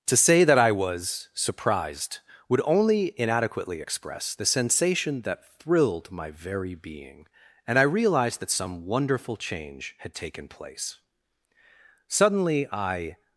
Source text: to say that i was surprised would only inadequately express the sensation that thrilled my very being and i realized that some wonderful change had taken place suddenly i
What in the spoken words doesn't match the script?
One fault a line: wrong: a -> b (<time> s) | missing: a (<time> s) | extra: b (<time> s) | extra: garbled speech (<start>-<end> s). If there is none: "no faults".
no faults